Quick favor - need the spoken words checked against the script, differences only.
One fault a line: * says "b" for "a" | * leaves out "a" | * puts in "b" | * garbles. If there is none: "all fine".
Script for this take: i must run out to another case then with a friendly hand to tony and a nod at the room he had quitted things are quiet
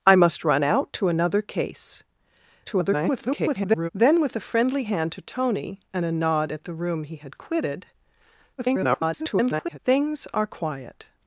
* garbles
* garbles